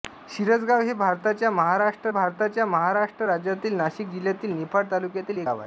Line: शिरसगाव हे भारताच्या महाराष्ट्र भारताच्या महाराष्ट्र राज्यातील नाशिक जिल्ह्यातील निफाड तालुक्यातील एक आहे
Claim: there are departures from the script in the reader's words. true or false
false